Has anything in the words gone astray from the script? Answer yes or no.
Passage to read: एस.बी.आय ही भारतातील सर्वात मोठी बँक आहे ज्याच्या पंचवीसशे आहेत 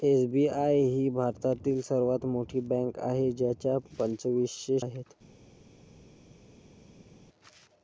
no